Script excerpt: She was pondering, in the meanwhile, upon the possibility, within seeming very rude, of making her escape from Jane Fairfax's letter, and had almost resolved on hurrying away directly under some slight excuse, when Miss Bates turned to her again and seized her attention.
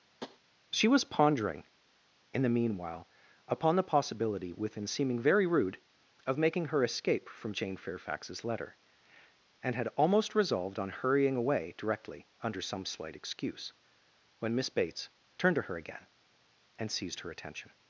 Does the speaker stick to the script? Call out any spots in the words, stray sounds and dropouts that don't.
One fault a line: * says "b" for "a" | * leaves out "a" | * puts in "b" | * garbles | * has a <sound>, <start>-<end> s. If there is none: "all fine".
* has a tap, 0.2-0.4 s